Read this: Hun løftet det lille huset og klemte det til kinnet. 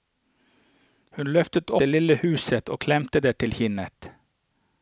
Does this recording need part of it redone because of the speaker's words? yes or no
no